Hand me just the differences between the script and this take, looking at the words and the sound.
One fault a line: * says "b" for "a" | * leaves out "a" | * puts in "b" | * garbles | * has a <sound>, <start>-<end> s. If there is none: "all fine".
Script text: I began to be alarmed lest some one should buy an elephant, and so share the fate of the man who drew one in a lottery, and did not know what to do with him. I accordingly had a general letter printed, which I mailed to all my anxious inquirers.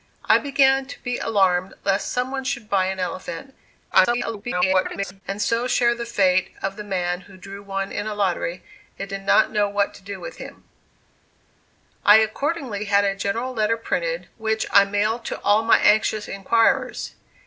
* garbles